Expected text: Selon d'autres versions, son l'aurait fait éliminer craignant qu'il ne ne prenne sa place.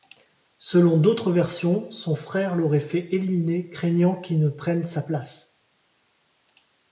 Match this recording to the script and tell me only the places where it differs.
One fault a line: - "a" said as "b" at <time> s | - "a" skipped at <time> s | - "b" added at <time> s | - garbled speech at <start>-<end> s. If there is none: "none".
- "frère" added at 2.1 s
- "ne" skipped at 4.5 s